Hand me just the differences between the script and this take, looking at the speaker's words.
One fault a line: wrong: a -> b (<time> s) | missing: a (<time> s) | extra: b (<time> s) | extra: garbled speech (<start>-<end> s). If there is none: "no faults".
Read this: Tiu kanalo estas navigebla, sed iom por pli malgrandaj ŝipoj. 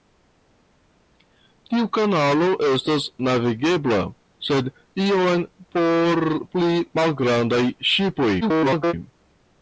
extra: garbled speech (8.4-8.9 s)